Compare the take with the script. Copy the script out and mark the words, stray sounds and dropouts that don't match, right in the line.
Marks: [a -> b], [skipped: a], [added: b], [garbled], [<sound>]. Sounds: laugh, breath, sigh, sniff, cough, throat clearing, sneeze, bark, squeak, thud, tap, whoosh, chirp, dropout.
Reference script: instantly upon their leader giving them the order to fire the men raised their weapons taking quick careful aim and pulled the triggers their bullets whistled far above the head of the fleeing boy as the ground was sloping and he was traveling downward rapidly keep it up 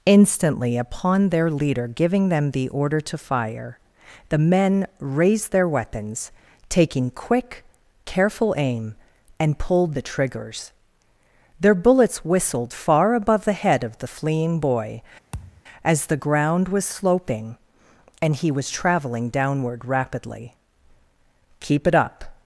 instantly upon their leader giving them the order to fire the men raised their weapons taking quick careful aim and pulled the triggers their bullets whistled far above the head of the fleeing boy [thud] as the ground was sloping and he was traveling downward rapidly keep it up